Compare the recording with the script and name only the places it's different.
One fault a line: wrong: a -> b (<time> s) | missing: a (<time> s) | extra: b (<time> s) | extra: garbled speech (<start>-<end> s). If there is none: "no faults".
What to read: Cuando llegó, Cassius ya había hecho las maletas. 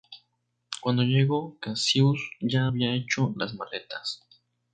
no faults